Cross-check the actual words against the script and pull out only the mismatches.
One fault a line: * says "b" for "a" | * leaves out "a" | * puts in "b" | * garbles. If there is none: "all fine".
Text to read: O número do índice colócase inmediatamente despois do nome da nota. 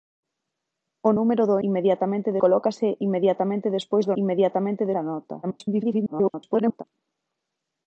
* says "inmediatamente" for "índice"
* says "inmediatamente" for "nome"
* garbles